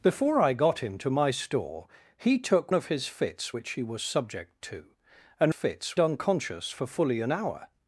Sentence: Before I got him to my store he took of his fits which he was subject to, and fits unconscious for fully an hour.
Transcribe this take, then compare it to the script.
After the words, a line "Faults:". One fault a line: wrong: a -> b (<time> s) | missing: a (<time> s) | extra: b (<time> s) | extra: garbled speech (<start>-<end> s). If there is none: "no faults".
Before I got him to my store he took of his fits which he was subject to, and fits unconscious for fully an hour.
Faults:
no faults